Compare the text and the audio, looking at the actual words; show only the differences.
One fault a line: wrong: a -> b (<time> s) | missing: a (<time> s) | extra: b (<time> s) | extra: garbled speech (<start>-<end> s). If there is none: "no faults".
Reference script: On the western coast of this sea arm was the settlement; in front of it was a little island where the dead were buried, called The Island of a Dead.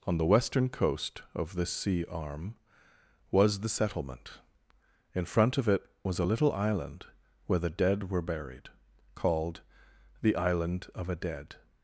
no faults